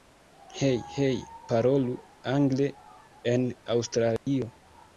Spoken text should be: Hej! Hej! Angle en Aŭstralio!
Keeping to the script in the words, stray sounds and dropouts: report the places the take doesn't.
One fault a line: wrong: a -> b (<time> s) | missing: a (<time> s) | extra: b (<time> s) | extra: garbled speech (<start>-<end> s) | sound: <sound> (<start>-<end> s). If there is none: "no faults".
extra: Parolu (1.5 s)
sound: dropout (4.2-4.3 s)